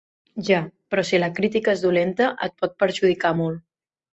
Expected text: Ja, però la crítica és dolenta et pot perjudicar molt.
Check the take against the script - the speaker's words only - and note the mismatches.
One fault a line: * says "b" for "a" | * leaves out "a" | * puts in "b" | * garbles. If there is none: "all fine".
* puts in "si"